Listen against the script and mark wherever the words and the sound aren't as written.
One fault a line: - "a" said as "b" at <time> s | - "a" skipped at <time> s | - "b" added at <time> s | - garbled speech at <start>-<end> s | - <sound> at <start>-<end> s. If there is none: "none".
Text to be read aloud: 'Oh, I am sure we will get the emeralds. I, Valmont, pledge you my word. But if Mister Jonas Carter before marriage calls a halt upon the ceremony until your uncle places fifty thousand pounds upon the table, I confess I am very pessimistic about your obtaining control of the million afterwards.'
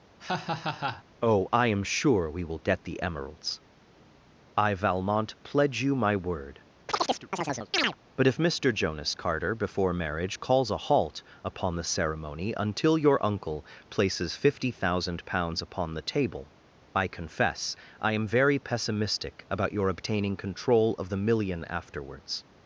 - laugh at 0.2-1.0 s
- chirp at 6.9-8.0 s